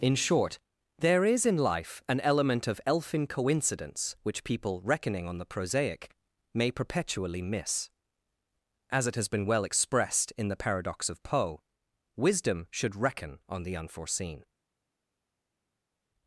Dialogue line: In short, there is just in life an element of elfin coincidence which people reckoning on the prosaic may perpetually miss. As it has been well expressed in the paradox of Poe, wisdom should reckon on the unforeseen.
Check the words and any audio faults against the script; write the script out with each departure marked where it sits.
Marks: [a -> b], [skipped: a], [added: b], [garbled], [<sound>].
In short, there is [skipped: just] in life an element of elfin coincidence which people reckoning on the prosaic may perpetually miss. As it has been well expressed in the paradox of Poe, wisdom should reckon on the unforeseen.